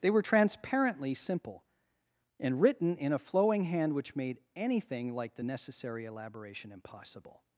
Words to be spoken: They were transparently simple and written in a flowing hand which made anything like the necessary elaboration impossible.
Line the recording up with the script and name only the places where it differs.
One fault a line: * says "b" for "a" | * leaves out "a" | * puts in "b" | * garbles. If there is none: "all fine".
all fine